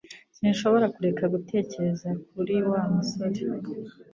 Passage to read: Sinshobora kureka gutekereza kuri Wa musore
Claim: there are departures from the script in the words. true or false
false